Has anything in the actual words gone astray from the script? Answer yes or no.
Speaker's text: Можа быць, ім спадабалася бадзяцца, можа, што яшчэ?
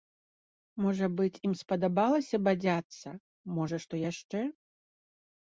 no